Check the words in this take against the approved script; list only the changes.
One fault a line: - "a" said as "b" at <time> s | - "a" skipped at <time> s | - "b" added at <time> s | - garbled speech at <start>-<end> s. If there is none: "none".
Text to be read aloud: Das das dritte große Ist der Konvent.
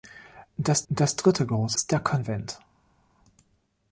none